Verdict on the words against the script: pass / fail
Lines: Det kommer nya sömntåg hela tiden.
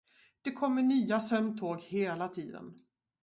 pass